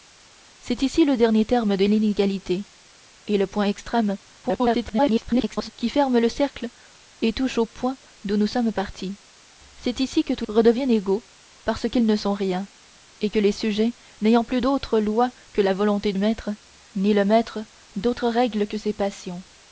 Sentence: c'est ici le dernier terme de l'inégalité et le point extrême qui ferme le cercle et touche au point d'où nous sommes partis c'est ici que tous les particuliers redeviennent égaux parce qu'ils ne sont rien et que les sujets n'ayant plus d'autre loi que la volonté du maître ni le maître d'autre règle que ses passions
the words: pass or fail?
fail